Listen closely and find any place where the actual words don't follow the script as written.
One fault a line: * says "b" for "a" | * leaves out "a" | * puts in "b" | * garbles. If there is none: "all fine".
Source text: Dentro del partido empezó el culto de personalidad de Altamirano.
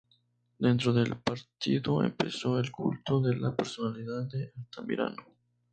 * puts in "la"